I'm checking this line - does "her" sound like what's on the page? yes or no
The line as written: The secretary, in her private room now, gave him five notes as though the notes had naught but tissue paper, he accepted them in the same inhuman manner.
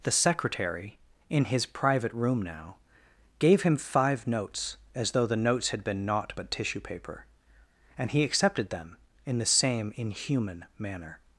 no